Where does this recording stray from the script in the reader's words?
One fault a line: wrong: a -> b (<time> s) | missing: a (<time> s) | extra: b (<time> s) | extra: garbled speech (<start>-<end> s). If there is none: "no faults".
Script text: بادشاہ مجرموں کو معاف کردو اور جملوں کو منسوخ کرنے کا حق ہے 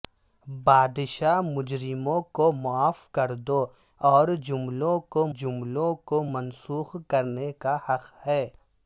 extra: جملوں کو (5.3 s)